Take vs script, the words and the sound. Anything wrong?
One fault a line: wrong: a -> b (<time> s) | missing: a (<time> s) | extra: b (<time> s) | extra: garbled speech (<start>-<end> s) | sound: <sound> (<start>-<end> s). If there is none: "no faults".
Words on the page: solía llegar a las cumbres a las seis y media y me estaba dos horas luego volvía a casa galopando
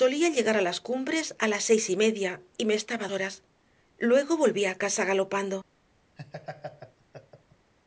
missing: dos (3.1 s)
sound: laugh (6.2-7.7 s)